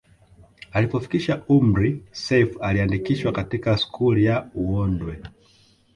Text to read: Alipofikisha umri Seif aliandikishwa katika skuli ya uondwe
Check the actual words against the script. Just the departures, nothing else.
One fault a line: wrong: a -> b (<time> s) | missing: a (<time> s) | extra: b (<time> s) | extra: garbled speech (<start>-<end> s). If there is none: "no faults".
no faults